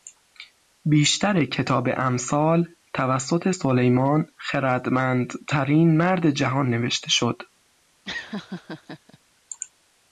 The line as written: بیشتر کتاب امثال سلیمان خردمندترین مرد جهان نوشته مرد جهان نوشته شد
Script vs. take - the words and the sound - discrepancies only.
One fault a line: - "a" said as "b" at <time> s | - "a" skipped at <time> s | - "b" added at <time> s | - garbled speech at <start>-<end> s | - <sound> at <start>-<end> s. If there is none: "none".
- "توسط" added at 2.9 s
- "مرد جهان نوشته" skipped at 7.1 s
- laugh at 8.0-9.2 s